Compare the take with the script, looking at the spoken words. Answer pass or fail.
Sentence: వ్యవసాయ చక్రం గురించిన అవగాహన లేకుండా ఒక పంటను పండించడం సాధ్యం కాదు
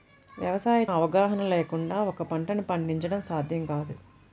fail